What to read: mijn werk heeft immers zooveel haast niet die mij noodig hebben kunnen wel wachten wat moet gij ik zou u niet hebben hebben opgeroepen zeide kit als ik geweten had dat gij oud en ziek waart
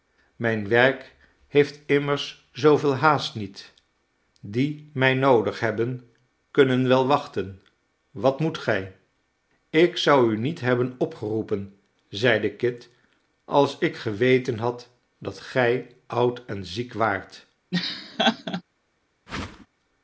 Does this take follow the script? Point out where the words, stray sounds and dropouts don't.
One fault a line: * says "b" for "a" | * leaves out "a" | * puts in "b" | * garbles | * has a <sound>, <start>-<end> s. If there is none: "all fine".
* leaves out "hebben"
* has a laugh, 17.7-18.6 s
* has a whoosh, 19.3-19.7 s